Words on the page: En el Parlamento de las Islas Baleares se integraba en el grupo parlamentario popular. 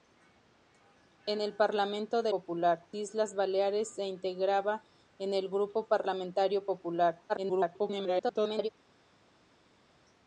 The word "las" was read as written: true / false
false